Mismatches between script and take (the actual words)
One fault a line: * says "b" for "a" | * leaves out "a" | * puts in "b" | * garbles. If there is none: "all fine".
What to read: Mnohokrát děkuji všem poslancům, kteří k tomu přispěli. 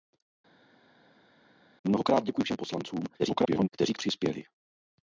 * garbles
* leaves out "tomu"